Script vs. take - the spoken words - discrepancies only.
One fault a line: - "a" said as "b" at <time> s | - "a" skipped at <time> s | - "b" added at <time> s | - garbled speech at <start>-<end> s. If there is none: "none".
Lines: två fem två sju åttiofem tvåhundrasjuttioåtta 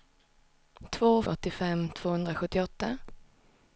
- "fem två sju" skipped at 1.2 s